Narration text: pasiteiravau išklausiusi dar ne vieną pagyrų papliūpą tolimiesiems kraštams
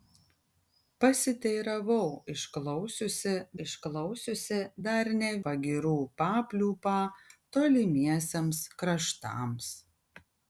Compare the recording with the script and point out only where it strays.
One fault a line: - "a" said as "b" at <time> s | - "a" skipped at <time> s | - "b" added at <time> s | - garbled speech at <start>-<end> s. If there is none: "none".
- "išklausiusi" added at 3.6 s
- "vieną" skipped at 5.3 s